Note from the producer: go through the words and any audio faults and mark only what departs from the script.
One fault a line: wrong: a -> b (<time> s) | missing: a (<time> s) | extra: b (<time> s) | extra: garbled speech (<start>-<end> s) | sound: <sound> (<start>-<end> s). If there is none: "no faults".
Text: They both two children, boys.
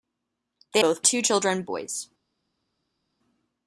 no faults